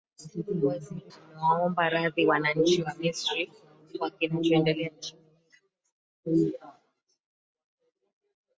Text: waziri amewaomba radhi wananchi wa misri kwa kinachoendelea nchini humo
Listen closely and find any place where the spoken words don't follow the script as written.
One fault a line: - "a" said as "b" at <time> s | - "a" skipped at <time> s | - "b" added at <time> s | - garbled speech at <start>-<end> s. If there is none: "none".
none